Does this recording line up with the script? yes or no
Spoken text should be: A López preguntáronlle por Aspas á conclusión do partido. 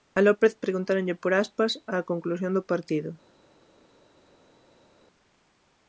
yes